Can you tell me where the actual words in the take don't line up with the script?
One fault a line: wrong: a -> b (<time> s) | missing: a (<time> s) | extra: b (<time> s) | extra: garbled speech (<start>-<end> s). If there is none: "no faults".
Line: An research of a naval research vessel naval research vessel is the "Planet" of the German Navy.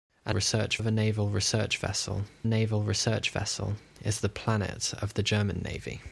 no faults